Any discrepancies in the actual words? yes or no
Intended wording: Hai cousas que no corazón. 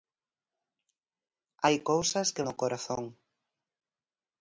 no